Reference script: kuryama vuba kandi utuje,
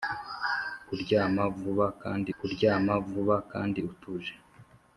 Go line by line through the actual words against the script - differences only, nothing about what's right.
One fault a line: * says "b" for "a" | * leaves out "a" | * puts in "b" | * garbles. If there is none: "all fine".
* puts in "kuryama vuba kandi"